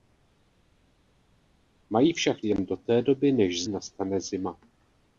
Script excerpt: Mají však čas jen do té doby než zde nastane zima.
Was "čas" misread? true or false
true